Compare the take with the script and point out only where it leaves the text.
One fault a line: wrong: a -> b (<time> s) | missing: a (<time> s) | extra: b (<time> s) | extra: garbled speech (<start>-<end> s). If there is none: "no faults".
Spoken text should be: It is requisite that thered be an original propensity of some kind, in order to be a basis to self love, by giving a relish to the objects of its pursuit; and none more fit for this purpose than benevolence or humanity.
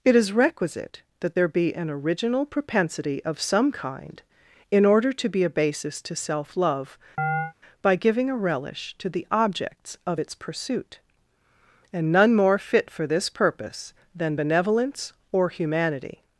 wrong: thered -> there (1.3 s)